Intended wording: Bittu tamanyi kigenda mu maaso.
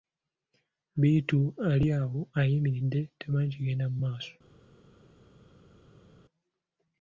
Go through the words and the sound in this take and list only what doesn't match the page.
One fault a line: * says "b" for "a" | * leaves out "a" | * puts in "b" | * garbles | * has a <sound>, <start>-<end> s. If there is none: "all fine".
* puts in "ali awo ayimiridde"